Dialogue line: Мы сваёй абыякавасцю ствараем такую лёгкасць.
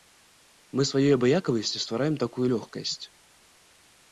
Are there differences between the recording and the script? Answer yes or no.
no